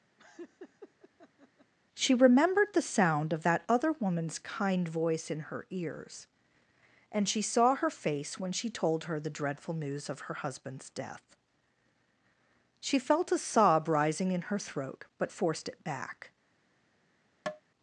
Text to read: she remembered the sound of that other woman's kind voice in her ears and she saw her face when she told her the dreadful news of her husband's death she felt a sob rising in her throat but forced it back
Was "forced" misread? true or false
false